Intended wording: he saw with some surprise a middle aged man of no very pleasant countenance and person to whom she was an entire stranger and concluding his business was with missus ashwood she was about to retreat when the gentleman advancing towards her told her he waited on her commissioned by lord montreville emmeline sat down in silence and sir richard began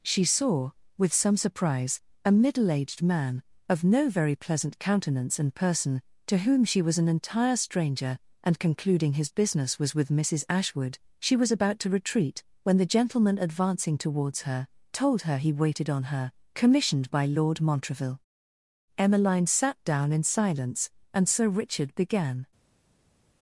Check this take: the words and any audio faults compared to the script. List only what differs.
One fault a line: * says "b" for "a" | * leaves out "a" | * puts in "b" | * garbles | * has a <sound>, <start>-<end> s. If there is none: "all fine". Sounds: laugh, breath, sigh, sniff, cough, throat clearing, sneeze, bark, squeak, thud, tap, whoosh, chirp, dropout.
* says "she" for "he"